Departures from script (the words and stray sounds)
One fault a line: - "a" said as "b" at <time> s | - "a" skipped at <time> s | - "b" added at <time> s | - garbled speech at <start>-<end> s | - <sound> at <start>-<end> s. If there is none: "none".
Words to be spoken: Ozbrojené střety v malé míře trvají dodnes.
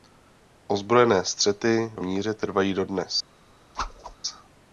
- "malé" skipped at 2.0 s
- whoosh at 3.7-4.1 s